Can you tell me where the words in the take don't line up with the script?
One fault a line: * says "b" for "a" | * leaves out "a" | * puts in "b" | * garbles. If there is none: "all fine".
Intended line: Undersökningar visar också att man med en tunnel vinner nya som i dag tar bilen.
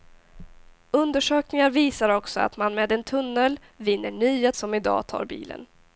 all fine